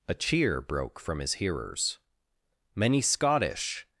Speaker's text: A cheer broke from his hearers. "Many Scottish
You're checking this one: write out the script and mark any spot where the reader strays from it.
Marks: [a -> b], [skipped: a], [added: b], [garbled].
A cheer broke from his hearers. "Many Scottish